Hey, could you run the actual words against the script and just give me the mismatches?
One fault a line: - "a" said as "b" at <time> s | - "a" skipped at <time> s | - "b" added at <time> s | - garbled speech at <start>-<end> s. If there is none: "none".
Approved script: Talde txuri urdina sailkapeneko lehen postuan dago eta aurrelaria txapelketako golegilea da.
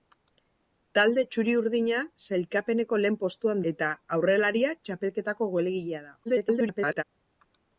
- "dago" skipped at 3.6 s
- garbled speech at 6.3-7.0 s